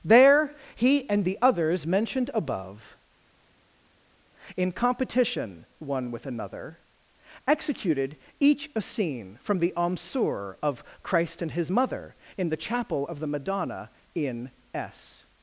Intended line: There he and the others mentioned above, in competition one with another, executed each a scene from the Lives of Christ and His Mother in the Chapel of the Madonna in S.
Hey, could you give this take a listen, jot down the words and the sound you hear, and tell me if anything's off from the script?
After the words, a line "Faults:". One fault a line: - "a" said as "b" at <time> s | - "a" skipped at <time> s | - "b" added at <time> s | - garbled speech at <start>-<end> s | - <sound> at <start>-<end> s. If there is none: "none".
There he and the others mentioned above, in competition one with another, executed each a scene from the Amsur of Christ and His Mother in the Chapel of the Madonna in S.
Faults:
- "Lives" said as "Amsur" at 9.8 s